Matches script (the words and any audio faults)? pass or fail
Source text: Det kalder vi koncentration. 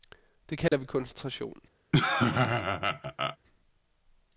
fail